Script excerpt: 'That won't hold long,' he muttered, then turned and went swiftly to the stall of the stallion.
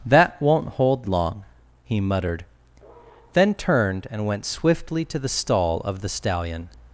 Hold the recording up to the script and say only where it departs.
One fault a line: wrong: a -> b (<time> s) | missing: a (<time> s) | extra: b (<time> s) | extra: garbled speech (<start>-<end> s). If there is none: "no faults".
no faults